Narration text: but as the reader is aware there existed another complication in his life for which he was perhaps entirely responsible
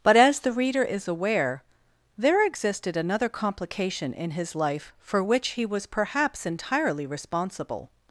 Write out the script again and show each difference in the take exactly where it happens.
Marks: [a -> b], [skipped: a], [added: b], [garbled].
but as the reader is aware there existed another complication in his life for which he was perhaps entirely responsible